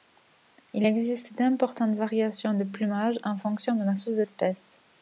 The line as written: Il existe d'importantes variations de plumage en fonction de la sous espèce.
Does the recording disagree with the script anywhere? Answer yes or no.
no